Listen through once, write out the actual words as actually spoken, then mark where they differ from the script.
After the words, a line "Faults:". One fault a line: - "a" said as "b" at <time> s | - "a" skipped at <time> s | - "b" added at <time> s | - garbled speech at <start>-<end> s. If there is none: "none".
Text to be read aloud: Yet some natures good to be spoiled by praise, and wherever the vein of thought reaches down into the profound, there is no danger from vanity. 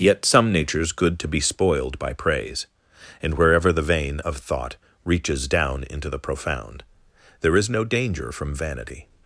Yet some natures good to be spoiled by praise, and wherever the vein of thought reaches down into the profound, there is no danger from vanity.
Faults:
none